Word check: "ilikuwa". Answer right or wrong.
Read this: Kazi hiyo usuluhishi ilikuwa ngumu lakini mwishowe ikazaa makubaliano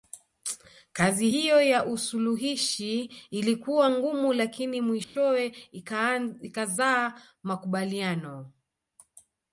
right